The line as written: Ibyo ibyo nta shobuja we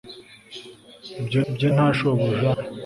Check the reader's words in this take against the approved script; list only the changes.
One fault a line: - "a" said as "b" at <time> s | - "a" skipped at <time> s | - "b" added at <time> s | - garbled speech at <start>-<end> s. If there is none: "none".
none